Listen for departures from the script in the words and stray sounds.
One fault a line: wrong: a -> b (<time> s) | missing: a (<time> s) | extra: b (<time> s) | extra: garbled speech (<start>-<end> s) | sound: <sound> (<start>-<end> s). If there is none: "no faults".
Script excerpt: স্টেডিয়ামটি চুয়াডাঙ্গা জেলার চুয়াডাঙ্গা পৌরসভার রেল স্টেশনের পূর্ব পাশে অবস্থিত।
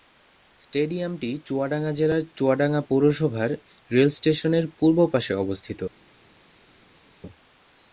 no faults